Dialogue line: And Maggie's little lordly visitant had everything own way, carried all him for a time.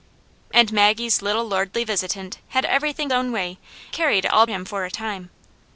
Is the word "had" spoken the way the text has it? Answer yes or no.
yes